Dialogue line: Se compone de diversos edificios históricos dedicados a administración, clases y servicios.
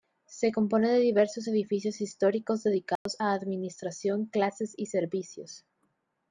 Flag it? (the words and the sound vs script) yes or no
yes